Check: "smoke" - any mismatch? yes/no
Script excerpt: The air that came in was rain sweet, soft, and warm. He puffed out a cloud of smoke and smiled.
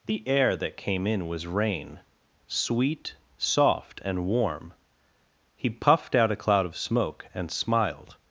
no